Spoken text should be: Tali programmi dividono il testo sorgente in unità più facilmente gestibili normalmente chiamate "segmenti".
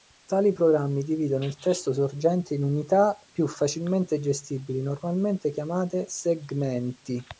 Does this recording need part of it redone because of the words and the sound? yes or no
no